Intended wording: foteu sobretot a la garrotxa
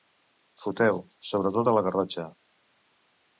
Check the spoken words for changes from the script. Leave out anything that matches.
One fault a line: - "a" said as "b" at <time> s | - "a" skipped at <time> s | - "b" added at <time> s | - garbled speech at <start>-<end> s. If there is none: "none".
none